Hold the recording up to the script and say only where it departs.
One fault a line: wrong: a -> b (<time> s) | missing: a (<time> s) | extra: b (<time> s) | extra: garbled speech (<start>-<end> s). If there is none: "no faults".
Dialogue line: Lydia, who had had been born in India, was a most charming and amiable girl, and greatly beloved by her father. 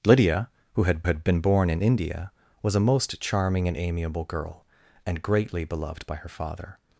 no faults